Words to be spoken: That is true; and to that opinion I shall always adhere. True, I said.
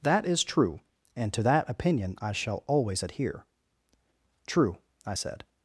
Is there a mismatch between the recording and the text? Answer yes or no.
no